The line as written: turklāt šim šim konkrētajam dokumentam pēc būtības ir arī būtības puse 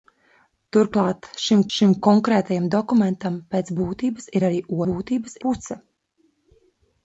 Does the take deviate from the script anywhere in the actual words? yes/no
no